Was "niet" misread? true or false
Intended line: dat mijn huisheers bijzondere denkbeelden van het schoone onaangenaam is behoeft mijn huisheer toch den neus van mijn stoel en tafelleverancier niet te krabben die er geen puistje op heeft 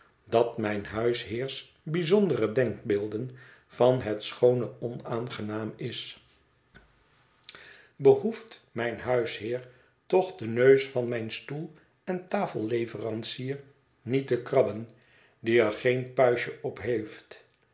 false